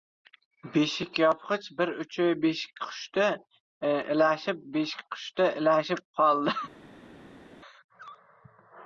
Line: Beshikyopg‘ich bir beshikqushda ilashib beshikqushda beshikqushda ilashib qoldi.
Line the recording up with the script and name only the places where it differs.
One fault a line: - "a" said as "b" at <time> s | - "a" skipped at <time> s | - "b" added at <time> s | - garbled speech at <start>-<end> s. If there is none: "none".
- "uchi" added at 2.1 s
- "beshikqushda" skipped at 5.5 s